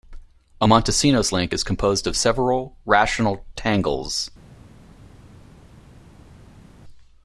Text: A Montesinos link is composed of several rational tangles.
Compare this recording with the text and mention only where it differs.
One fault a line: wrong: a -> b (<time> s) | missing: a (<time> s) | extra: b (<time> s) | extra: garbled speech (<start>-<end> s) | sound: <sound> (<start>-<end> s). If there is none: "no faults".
no faults